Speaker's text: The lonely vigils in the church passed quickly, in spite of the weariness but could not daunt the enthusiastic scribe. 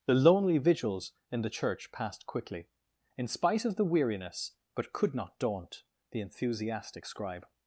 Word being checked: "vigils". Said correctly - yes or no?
yes